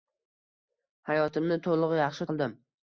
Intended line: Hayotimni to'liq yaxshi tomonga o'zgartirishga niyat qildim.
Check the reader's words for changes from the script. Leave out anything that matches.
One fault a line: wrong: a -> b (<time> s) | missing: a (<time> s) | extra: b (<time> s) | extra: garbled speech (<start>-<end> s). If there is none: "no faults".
missing: tomonga o'zgartirishga niyat (2.3 s)